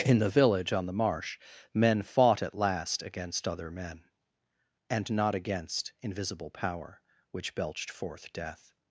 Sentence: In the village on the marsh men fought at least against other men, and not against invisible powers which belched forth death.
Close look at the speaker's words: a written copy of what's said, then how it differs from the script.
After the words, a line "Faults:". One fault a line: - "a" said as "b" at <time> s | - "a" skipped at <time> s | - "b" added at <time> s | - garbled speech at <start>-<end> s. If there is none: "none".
In the village on the marsh men fought at last against other men, and not against invisible power which belched forth death.
Faults:
- "least" said as "last" at 2.5 s
- "powers" said as "power" at 6.5 s